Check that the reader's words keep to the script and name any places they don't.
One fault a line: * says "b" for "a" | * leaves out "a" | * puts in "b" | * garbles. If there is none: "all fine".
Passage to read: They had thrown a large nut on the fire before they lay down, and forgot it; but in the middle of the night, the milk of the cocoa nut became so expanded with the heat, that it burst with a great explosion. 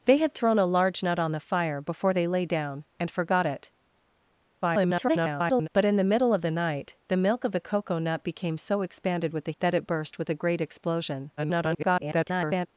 * garbles
* leaves out "heat"
* garbles